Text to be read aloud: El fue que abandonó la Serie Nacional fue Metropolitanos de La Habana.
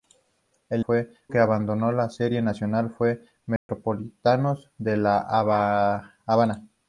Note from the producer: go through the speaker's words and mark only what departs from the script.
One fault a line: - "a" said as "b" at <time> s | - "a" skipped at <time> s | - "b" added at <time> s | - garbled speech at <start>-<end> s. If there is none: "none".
none